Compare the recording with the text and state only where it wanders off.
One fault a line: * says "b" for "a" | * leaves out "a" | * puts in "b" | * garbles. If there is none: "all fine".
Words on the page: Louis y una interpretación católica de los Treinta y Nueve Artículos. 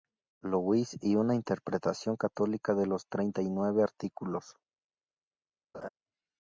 all fine